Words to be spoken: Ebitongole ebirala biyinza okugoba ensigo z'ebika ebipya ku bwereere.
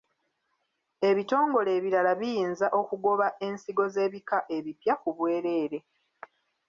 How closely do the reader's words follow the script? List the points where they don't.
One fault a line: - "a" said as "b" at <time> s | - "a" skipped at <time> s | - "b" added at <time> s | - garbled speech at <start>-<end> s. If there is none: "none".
none